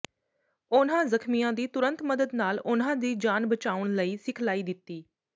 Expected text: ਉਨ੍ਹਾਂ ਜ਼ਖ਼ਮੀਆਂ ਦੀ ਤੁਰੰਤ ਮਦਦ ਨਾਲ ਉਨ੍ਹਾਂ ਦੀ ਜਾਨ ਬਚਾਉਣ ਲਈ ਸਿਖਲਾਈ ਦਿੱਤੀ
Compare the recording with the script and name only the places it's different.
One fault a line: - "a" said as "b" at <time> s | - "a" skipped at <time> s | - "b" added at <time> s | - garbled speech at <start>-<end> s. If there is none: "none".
none